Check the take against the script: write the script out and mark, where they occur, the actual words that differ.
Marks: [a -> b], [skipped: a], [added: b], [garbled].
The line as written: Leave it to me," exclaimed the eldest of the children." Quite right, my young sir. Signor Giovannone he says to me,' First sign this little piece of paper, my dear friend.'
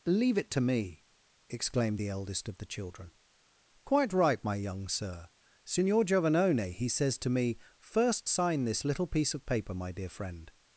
Leave it to me," exclaimed the eldest of the children." Quite right, my young sir. Signor Giovannone he says to me,' First sign this little piece of paper, my dear friend.'